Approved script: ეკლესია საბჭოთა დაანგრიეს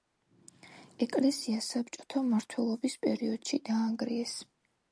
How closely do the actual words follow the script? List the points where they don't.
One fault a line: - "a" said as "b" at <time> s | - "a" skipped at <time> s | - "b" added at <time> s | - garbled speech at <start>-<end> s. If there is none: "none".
- "მმართველობის პერიოდში" added at 2.3 s